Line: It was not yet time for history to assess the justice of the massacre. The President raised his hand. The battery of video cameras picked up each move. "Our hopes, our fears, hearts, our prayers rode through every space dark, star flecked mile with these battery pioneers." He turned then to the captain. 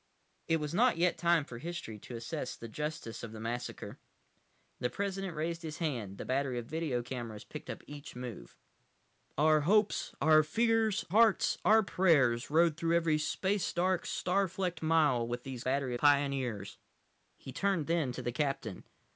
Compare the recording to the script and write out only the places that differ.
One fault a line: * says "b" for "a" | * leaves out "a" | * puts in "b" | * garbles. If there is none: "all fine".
all fine